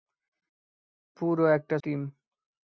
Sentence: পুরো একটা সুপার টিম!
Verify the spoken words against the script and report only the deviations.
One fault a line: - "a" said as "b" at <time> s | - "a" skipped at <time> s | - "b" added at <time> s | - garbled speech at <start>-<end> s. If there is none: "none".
- "সুপার" skipped at 1.8 s